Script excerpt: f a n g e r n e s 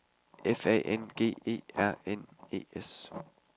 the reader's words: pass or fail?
pass